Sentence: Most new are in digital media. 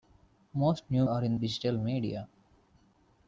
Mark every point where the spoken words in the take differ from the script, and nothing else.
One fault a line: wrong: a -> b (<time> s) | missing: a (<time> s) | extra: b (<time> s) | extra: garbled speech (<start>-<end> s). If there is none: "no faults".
no faults